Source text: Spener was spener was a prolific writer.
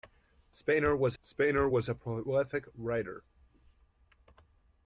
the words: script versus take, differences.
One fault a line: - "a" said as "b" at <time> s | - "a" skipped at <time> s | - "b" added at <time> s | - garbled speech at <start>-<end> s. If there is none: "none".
none